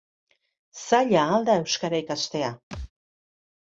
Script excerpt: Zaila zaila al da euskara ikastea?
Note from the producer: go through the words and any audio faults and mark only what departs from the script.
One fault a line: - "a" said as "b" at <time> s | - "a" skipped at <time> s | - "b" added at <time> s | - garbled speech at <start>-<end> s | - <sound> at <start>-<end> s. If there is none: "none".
- "zaila" skipped at 1.3 s
- thud at 2.7-2.9 s